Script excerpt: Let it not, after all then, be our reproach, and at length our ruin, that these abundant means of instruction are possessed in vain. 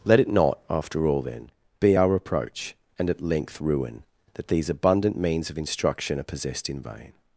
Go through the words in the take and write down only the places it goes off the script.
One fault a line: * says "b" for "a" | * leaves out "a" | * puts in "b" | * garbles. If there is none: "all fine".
* leaves out "our"